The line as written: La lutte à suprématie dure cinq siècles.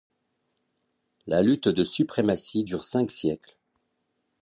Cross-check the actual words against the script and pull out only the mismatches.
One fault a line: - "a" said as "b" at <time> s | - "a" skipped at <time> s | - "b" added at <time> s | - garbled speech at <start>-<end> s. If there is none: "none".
- "à" said as "de" at 1.7 s